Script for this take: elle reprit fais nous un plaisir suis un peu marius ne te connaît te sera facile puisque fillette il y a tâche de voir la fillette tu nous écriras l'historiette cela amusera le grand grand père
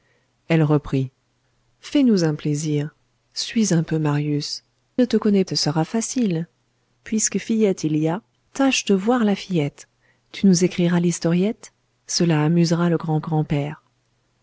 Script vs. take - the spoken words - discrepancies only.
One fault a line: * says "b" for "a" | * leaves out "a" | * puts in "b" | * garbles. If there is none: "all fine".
all fine